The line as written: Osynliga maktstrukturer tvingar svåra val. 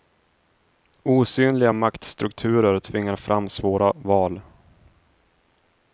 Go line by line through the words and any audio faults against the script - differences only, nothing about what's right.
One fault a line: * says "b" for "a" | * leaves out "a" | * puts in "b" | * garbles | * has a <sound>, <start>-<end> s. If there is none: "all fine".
* puts in "fram"